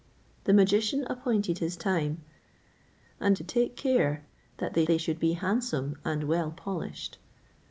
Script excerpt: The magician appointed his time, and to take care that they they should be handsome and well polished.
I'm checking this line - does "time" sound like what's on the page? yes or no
yes